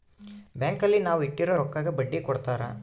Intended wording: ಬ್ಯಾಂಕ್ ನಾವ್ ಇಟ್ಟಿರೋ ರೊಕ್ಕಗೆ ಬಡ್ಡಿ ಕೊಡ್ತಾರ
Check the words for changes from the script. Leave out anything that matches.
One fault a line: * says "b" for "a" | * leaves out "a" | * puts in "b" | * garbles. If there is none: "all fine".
* puts in "ಅಲ್ಲಿ"